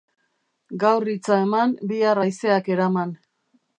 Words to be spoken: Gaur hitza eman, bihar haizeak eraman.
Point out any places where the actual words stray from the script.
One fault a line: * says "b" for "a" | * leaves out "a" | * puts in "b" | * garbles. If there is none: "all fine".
all fine